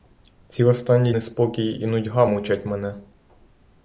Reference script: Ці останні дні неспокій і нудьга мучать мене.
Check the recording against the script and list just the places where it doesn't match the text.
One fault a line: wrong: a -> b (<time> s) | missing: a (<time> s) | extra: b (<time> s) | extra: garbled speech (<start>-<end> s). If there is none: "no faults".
missing: дні (1.1 s)